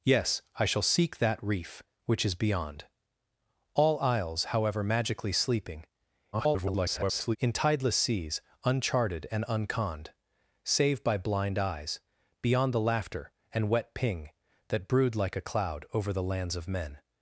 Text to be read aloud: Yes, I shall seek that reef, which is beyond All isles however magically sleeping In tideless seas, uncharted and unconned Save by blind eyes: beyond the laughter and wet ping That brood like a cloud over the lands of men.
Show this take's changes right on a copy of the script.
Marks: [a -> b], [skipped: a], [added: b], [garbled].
Yes, I shall seek that reef, which is beyond All isles however magically sleeping [garbled] In tideless seas, uncharted and unconned Save by blind eyes: beyond the laughter and wet ping That brood like a cloud over the lands of men.